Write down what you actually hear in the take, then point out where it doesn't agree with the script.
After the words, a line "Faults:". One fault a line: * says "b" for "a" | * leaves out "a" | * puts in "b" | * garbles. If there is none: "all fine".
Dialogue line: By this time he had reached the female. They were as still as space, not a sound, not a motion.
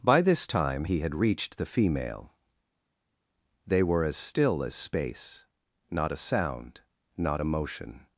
By this time he had reached the female. They were as still as space, not a sound, not a motion.
Faults:
all fine